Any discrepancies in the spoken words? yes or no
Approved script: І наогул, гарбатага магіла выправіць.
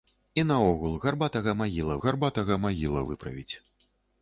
yes